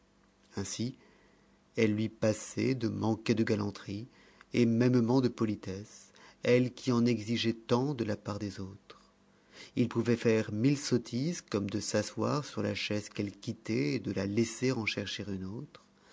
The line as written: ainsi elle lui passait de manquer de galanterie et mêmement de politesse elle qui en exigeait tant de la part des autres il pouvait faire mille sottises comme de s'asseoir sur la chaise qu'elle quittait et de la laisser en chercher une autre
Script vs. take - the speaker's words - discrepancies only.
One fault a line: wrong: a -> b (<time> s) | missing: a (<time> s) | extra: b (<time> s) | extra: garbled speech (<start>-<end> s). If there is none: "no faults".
no faults